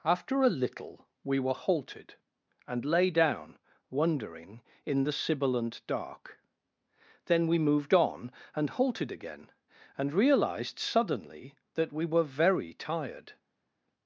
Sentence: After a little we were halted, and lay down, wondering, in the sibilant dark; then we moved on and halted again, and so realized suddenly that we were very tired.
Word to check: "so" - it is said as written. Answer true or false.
false